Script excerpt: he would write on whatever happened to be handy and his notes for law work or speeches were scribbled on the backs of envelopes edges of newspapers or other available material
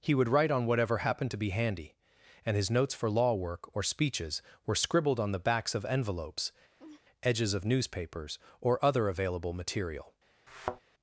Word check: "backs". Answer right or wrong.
right